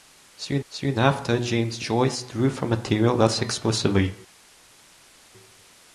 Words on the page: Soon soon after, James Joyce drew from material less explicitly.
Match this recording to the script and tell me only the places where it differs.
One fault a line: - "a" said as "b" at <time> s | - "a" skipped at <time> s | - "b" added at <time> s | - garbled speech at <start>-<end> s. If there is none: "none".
none